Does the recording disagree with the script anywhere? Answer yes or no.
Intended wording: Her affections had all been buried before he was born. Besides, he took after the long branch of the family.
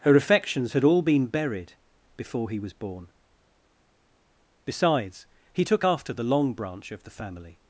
no